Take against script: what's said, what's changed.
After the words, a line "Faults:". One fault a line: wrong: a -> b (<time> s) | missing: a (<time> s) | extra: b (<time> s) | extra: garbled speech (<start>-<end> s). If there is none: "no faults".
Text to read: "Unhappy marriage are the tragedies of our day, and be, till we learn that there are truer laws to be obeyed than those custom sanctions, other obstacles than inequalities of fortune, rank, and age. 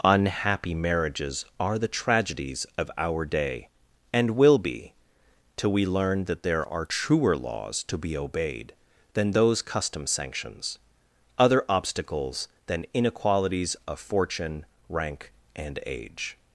"Unhappy marriages are the tragedies of our day, and will be, till we learn that there are truer laws to be obeyed than those custom sanctions, other obstacles than inequalities of fortune, rank, and age.
Faults:
wrong: marriage -> marriages (0.7 s)
extra: will (4.3 s)